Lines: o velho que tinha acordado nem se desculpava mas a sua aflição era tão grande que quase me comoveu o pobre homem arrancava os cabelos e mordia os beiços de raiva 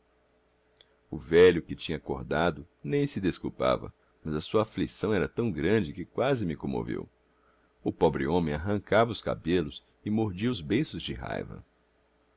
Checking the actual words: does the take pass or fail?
pass